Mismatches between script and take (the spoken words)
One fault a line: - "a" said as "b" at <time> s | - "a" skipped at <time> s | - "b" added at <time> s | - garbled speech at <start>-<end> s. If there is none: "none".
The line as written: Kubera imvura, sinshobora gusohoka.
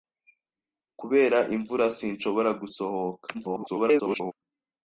- garbled speech at 3.3-4.3 s